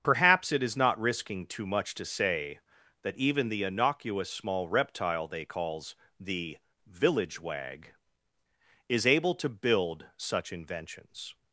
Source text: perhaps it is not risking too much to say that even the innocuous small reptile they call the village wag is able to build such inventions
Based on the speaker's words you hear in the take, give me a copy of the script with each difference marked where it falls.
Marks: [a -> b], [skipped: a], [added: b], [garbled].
perhaps it is not risking too much to say that even the innocuous small reptile they [call -> calls] the village wag is able to build such inventions